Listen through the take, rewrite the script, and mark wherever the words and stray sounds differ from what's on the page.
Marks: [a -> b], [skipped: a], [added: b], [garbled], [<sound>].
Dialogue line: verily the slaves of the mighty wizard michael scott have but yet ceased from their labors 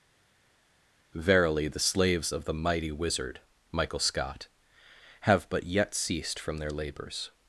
verily the slaves of the mighty wizard michael scott have but yet ceased from their labors